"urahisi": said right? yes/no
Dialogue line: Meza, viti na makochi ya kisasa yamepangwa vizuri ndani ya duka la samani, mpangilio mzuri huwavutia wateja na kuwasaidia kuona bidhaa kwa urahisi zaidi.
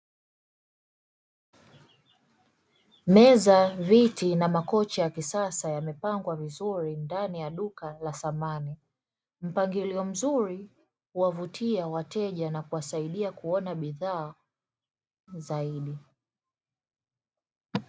no